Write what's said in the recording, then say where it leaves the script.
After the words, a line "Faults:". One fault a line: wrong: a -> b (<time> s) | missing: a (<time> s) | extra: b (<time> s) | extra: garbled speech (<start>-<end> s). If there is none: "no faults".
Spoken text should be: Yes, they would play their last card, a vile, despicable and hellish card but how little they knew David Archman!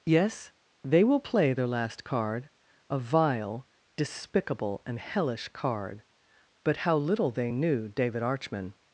Yes, they will play their last card, a vile, despicable and hellish card but how little they knew David Archman!
Faults:
wrong: would -> will (1.0 s)